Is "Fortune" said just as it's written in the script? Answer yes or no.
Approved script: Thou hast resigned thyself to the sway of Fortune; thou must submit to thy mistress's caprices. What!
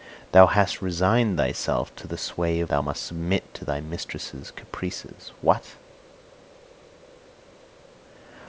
no